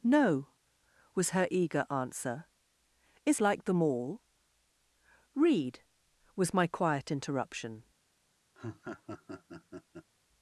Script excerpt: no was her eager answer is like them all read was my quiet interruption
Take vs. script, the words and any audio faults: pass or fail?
fail